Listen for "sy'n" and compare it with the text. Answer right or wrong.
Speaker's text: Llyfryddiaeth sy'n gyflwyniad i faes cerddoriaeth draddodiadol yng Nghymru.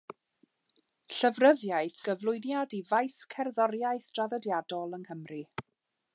wrong